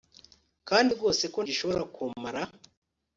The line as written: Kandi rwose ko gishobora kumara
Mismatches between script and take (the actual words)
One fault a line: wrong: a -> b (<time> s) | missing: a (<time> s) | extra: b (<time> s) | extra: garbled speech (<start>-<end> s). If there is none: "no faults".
no faults